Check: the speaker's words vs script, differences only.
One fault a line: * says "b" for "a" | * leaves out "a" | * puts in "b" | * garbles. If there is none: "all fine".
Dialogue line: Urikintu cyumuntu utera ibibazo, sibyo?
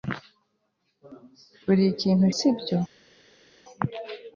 * leaves out "cyumuntu utera ibibazo"